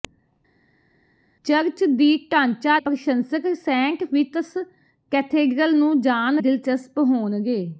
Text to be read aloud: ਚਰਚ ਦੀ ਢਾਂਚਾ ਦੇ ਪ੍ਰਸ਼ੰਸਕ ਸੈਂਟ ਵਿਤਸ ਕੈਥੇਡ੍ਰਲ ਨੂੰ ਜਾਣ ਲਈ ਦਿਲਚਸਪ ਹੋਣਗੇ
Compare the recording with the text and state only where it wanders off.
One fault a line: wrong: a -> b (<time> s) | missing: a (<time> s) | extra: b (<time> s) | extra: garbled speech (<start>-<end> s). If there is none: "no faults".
missing: ਦੇ (2.8 s)
missing: ਲਈ (6.4 s)